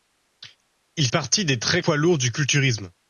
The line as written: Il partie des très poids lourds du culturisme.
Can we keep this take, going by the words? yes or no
yes